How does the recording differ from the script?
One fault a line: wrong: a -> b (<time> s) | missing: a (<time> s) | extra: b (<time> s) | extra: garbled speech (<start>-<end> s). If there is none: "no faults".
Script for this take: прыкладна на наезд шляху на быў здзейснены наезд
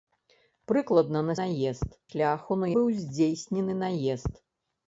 no faults